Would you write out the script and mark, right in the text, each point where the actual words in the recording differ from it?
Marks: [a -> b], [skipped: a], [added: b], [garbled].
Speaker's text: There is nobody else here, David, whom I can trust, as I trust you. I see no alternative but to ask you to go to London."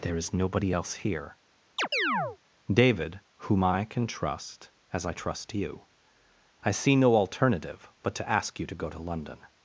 There is nobody else here, David, whom I can trust, as I trust you. I see no alternative but to ask you to go to London."